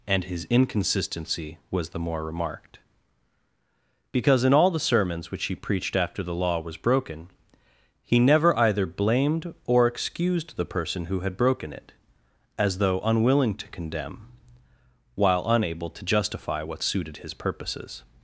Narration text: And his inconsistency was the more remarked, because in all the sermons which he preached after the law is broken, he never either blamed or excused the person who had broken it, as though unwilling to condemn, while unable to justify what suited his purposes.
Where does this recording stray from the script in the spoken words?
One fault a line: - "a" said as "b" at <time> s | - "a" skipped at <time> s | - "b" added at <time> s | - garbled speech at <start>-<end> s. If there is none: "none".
- "is" said as "was" at 6.6 s